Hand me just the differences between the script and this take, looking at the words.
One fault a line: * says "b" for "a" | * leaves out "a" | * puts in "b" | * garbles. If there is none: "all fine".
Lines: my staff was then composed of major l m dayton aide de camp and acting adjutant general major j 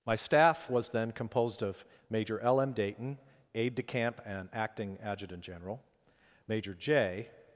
all fine